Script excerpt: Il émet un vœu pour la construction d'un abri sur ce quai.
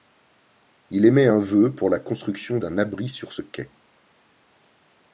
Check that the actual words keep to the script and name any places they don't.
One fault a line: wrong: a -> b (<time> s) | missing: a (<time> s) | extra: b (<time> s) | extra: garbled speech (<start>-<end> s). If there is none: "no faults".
no faults